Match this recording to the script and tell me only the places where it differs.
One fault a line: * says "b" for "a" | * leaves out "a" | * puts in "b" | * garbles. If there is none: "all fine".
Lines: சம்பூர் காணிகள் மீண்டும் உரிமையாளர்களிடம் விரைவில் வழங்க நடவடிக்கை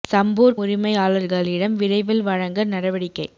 * leaves out "காணிகள் மீண்டும்"